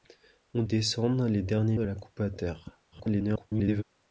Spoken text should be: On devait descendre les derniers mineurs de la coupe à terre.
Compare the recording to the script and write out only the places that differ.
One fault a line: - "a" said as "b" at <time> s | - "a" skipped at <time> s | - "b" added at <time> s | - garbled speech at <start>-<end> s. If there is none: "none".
- "devait" skipped at 0.6 s
- "mineurs" skipped at 1.8 s
- garbled speech at 2.9-3.8 s